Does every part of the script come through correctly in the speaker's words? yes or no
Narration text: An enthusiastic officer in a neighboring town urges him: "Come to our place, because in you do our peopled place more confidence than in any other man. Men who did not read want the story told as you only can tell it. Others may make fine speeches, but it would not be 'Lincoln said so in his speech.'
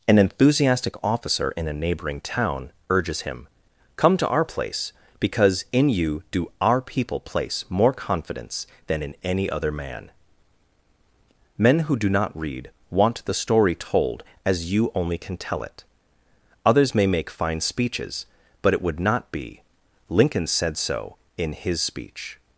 no